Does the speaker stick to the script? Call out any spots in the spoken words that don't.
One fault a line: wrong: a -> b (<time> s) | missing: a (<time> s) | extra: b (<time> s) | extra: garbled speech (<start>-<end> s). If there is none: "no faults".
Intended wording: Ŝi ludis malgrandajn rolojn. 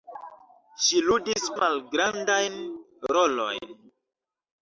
no faults